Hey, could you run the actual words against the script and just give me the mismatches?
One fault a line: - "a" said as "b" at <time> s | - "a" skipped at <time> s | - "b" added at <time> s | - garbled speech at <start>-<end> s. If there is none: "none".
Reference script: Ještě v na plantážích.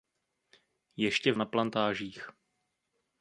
none